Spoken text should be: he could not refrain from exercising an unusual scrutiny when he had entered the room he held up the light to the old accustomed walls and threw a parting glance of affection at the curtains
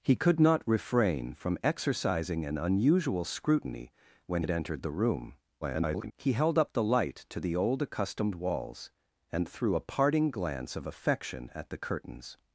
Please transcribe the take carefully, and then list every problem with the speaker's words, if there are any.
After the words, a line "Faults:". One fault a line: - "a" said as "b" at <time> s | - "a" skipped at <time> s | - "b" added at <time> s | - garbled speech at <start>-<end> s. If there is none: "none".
he could not refrain from exercising an unusual scrutiny when had entered the room [garbled] he held up the light to the old accustomed walls and threw a parting glance of affection at the curtains
Faults:
- "he" skipped at 4.4 s
- garbled speech at 5.6-6.1 s